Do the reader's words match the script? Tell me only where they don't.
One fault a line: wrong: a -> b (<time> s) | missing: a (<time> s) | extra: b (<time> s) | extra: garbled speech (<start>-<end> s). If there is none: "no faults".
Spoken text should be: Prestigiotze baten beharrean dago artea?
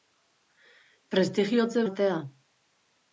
missing: baten beharrean dago (1.9 s)